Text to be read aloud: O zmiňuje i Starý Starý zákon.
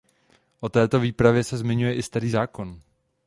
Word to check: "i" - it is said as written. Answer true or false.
true